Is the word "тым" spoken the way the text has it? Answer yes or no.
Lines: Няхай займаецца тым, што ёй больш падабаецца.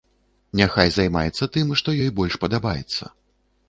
yes